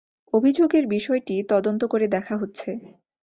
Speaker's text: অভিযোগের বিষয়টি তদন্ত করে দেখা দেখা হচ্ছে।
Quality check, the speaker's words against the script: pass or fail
fail